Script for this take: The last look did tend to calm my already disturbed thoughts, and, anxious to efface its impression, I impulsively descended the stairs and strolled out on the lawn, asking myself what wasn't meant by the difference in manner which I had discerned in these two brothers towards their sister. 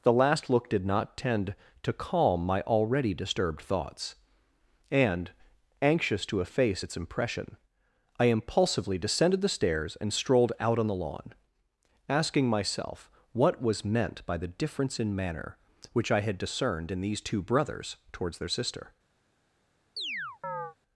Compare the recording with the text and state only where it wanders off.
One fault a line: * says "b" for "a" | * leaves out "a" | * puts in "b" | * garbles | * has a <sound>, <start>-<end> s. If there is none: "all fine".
* puts in "not"
* says "was" for "wasn't"
* has a chirp, 20.0-20.8 s